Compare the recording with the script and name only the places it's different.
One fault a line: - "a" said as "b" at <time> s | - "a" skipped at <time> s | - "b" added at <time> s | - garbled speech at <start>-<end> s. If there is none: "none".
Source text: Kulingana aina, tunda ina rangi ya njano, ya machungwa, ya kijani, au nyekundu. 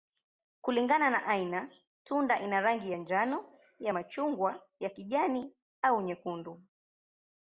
- "na" added at 1.1 s